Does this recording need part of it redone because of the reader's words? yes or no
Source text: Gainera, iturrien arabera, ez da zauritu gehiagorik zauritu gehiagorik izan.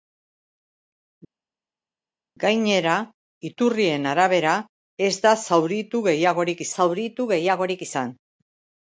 no